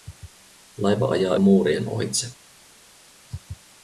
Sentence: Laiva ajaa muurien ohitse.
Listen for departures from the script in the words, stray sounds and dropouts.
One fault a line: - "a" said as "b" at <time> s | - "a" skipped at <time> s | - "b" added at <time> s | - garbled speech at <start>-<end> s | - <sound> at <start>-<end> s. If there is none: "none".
none